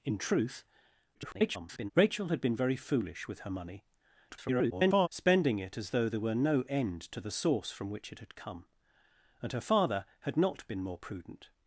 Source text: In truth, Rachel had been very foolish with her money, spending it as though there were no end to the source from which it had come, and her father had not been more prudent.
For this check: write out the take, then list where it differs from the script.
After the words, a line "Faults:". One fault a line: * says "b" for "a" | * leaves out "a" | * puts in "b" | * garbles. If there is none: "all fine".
In truth, [garbled] Rachel had been very foolish with her money, [garbled] spending it as though there were no end to the source from which it had come, and her father had not been more prudent.
Faults:
* garbles
* garbles